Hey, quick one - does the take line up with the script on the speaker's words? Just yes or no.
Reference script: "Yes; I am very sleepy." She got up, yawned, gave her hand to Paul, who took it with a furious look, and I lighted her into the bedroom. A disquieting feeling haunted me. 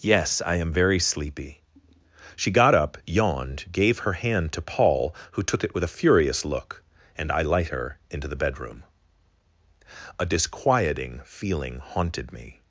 no